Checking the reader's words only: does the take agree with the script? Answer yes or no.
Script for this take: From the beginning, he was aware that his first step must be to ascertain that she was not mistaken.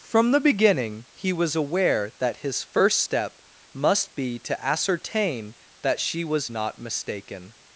yes